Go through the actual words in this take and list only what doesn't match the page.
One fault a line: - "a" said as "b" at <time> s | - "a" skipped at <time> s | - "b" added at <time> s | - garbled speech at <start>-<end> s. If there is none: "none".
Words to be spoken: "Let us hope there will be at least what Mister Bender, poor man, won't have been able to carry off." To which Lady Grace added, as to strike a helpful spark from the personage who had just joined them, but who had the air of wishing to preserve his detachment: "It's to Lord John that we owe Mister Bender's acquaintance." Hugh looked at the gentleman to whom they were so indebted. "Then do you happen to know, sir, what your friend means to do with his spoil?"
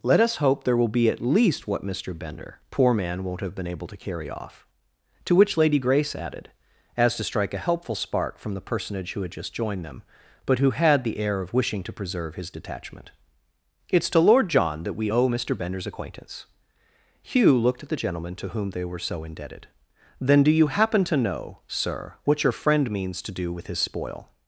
none